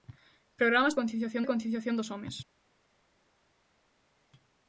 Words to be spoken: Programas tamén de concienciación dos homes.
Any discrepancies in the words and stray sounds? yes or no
yes